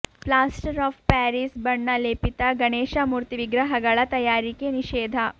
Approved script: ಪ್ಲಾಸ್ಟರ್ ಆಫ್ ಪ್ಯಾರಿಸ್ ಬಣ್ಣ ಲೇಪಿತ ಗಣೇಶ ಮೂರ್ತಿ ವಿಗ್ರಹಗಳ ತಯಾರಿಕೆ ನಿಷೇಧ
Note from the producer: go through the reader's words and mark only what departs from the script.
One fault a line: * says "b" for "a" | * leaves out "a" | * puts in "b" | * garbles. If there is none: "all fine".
all fine